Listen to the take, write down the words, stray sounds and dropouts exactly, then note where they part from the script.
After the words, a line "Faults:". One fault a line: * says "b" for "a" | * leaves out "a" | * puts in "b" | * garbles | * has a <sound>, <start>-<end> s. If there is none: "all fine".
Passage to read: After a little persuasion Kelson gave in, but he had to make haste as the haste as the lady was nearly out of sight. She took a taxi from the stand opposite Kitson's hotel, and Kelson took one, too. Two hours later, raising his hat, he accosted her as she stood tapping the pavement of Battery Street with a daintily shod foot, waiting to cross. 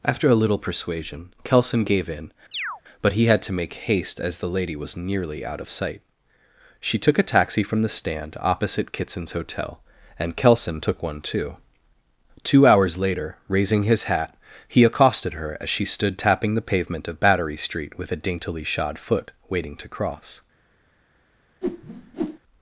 After a little persuasion Kelson gave in, but he had to make haste as the lady was nearly out of sight. She took a taxi from the stand opposite Kitson's hotel, and Kelson took one, too. Two hours later, raising his hat, he accosted her as she stood tapping the pavement of Battery Street with a daintily shod foot, waiting to cross.
Faults:
* has a chirp, 2.5-2.8 s
* leaves out "haste as the"
* has a whoosh, 21.6-22.4 s